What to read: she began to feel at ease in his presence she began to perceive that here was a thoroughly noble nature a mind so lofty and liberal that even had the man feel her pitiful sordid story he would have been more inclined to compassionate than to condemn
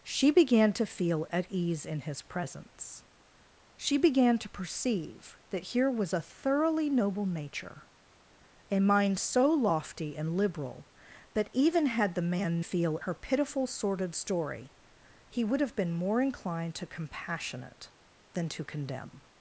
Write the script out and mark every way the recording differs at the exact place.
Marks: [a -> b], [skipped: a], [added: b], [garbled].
she began to feel at ease in his presence she began to perceive that here was a thoroughly noble nature a mind so lofty and liberal that even had the man feel her pitiful sordid story he would have been more inclined to compassionate than to condemn